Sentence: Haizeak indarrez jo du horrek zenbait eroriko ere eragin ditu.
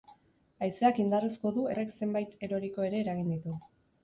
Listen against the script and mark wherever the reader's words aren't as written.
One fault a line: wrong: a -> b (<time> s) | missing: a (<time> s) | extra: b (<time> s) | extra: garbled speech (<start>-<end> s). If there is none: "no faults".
no faults